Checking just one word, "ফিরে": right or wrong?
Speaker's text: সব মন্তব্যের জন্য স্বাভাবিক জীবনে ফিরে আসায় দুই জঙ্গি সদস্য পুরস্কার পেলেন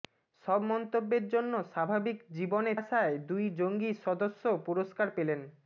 wrong